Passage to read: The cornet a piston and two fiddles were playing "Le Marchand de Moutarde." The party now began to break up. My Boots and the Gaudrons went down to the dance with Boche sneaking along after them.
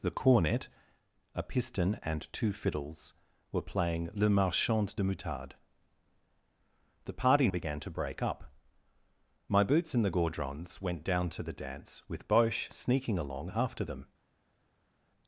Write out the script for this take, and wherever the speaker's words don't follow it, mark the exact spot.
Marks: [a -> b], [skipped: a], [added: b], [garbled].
The cornet a piston and two fiddles were playing "Le Marchand de Moutarde." The party [skipped: now] began to break up. My Boots and the Gaudrons went down to the dance with Boche sneaking along after them.